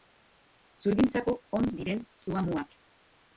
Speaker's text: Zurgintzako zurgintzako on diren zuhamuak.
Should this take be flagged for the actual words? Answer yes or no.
yes